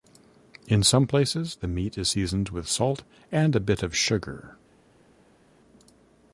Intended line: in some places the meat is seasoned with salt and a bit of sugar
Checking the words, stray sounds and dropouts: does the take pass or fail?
pass